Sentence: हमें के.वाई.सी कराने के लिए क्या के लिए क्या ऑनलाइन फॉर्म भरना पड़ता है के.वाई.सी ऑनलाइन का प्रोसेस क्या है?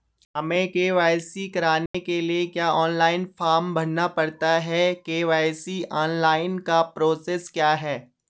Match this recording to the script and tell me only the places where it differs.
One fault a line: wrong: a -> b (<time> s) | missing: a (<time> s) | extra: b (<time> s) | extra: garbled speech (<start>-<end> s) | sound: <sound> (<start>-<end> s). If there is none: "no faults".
sound: dropout (1.9-1.9 s)
missing: के लिए क्या (2.7 s)